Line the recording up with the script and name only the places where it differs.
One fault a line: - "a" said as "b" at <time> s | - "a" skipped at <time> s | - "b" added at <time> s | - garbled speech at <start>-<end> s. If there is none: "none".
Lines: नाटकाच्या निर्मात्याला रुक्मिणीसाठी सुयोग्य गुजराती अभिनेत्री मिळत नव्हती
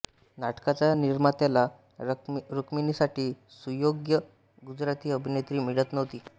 none